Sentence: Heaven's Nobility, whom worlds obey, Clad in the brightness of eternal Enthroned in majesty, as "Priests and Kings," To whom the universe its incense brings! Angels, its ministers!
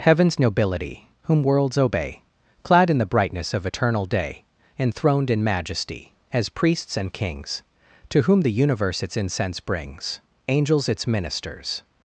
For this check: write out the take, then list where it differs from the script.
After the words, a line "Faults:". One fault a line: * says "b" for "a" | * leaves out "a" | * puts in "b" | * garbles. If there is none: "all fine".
Heaven's Nobility, whom worlds obey, Clad in the brightness of eternal day, Enthroned in majesty, as "Priests and Kings," To whom the universe its incense brings! Angels, its ministers!
Faults:
* puts in "day"